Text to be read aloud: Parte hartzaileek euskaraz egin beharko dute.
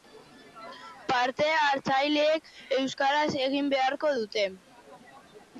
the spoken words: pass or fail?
pass